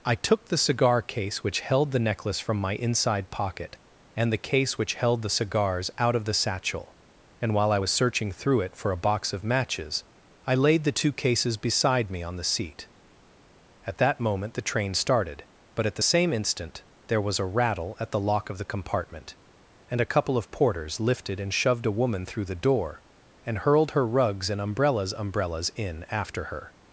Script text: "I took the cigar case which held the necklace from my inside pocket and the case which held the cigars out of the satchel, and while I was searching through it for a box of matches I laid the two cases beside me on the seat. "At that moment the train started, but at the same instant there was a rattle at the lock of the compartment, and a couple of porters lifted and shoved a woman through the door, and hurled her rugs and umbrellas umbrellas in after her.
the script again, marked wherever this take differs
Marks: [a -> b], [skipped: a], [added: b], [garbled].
"I took the cigar case which held the necklace from my inside pocket and the case which held the cigars out of the satchel, and while I was searching through it for a box of matches I laid the two cases beside me on the seat. "At that moment the train started, but at the same instant there was a rattle at the lock of the compartment, and a couple of porters lifted and shoved a woman through the door, and hurled her rugs and umbrellas umbrellas in after her.